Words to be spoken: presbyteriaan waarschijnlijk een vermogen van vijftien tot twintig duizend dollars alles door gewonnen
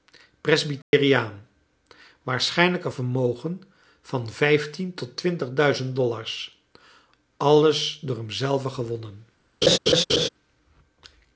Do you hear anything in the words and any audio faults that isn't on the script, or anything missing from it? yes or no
yes